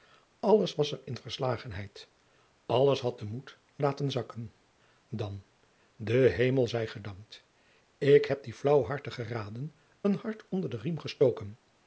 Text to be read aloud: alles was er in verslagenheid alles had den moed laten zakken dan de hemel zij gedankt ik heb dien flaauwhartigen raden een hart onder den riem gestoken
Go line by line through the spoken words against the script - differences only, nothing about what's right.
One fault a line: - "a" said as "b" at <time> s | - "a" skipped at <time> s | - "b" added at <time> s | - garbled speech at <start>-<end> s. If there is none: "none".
none